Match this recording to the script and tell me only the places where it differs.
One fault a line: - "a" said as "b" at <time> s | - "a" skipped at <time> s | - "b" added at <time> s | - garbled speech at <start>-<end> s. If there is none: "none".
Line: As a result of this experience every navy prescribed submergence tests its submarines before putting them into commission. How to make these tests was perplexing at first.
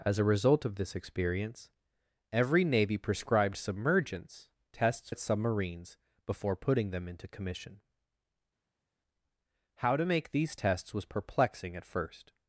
none